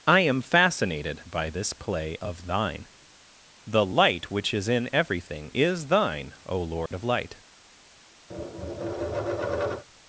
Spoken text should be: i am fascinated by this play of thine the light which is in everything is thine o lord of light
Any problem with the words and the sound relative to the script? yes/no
yes